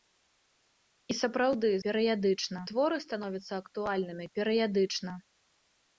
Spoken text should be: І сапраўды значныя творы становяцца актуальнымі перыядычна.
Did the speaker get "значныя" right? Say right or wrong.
wrong